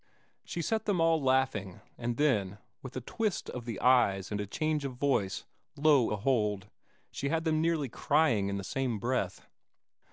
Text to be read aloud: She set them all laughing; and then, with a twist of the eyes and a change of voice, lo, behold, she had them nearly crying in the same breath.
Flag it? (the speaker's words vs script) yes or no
no